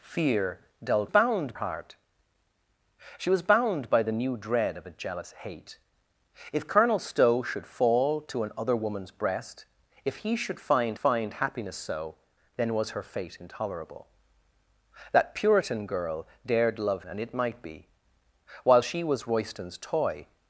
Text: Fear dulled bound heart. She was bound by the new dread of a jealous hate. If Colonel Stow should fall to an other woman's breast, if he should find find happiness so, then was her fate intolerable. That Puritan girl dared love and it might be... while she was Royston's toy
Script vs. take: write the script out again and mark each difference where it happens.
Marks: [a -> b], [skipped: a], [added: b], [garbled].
Fear dulled bound heart. She was bound by the new dread of a jealous hate. If Colonel Stow should fall to an other woman's breast, if he should find find happiness so, then was her fate intolerable. That Puritan girl dared love and it might be... while she was Royston's toy